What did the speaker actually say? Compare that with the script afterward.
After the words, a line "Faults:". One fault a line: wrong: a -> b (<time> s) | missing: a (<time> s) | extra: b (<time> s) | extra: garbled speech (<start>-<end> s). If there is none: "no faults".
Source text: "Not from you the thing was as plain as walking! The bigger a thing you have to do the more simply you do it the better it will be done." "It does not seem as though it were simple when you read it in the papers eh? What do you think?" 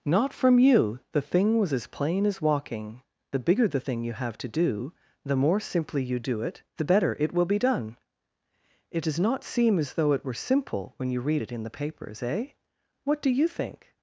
"Not from you the thing was as plain as walking! The bigger the thing you have to do the more simply you do it the better it will be done." "It does not seem as though it were simple when you read it in the papers eh? What do you think?"
Faults:
wrong: a -> the (3.7 s)